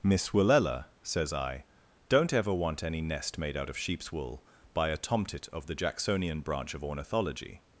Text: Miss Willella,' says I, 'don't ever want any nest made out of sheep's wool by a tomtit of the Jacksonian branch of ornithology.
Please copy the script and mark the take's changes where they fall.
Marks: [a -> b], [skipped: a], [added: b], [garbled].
Miss Willella,' says I, 'don't ever want any nest made out of sheep's wool by a tomtit of the Jacksonian branch of ornithology.